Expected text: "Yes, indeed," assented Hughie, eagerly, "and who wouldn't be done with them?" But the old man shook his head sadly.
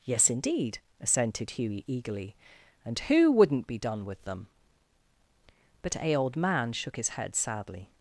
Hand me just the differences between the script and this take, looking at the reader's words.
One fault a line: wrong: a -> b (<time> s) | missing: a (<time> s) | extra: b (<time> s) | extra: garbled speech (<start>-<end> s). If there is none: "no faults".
wrong: the -> a (6.0 s)